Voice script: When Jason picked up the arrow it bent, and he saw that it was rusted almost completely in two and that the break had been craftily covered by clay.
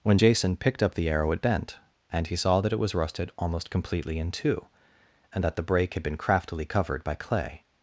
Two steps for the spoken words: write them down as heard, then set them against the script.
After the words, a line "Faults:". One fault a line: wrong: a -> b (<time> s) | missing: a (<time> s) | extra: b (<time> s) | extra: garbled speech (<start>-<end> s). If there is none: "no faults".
When Jason picked up the arrow it bent, and he saw that it was rusted almost completely in two and that the break had been craftily covered by clay.
Faults:
no faults